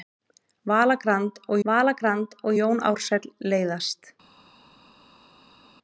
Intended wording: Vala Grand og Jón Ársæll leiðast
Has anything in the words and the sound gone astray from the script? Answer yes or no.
yes